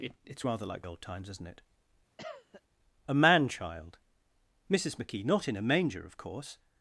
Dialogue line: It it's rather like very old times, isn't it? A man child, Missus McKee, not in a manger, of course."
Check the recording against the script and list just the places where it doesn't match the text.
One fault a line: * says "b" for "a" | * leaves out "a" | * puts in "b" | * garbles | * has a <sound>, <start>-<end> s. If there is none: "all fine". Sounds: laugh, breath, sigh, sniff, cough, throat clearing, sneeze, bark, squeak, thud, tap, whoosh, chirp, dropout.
* leaves out "very"
* has a cough, 2.2-2.6 s